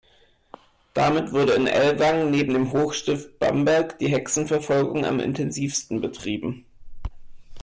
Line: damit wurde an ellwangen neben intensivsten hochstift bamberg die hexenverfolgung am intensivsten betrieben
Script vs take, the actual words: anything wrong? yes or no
yes